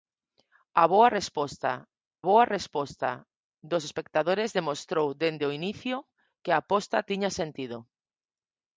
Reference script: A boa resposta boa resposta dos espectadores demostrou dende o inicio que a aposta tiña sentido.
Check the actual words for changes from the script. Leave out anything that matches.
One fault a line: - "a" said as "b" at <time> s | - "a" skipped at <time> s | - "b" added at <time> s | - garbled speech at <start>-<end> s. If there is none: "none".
none